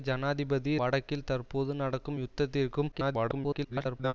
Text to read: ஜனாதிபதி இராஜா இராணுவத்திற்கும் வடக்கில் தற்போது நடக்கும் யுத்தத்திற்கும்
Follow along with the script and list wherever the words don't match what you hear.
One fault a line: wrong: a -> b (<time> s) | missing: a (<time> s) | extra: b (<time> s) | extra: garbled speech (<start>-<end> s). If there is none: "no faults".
missing: இராஜா இராணுவத்திற்கும் (0.7 s)
extra: garbled speech (2.9-4.1 s)